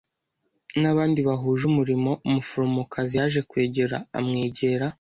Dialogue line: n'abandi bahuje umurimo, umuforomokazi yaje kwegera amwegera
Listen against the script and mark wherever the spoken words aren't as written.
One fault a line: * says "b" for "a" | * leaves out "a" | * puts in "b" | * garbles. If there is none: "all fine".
all fine